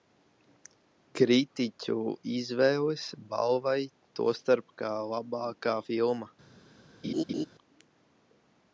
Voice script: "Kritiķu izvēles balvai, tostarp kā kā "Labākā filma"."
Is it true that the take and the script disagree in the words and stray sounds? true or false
true